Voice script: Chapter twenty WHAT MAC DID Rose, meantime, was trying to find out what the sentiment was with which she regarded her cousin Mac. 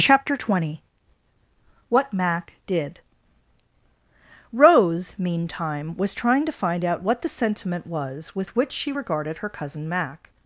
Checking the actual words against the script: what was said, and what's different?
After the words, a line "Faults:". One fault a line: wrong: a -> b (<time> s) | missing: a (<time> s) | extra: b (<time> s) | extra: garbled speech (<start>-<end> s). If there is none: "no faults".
Chapter twenty WHAT MAC DID Rose, meantime, was trying to find out what the sentiment was with which she regarded her cousin Mac.
Faults:
no faults